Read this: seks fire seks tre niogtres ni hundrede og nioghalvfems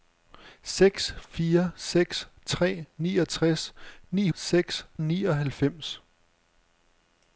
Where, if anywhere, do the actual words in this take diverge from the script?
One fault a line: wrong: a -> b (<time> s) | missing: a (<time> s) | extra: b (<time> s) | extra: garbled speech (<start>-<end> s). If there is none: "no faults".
wrong: hundrede -> seks (4.3 s)